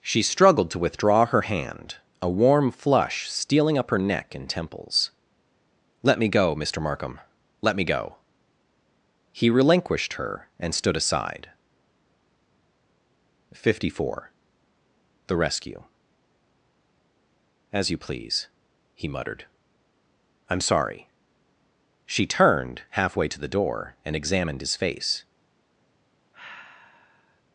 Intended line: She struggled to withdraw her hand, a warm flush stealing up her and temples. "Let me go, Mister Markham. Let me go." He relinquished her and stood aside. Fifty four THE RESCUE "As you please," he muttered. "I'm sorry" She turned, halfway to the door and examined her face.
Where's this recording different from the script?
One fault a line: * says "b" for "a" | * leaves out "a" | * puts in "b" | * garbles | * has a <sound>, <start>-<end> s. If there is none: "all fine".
* puts in "neck"
* says "his" for "her"
* has a sigh, 26.3-27.4 s